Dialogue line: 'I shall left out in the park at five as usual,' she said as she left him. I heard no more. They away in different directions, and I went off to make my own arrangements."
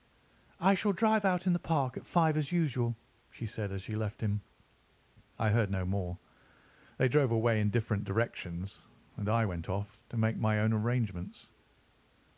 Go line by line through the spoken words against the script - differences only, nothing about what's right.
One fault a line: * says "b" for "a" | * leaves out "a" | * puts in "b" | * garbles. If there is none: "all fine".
* says "drive" for "left"
* puts in "drove"